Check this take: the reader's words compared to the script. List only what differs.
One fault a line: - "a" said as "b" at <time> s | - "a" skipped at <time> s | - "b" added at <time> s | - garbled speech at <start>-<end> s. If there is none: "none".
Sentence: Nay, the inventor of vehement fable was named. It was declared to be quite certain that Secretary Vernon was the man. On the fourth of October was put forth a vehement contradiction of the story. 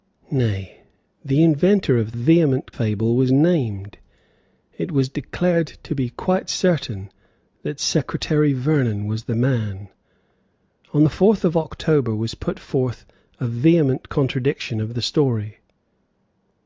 none